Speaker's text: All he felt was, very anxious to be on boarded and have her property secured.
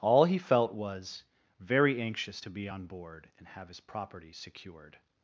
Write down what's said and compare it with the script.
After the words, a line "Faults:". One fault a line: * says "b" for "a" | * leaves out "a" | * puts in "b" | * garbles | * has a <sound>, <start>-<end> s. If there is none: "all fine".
All he felt was, very anxious to be on board and have his property secured.
Faults:
* says "board" for "boarded"
* says "his" for "her"